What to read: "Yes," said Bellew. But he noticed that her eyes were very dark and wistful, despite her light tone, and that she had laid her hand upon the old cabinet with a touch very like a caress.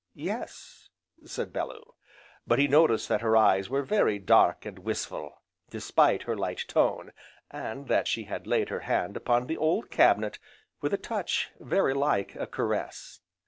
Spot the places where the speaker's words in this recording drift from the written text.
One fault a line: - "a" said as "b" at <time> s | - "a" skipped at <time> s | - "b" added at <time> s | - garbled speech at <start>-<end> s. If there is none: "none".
none